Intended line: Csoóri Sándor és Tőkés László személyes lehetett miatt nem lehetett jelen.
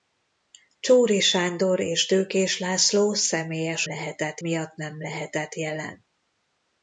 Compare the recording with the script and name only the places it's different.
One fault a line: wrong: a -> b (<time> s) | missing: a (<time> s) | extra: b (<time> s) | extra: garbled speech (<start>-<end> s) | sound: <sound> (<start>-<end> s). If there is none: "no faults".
no faults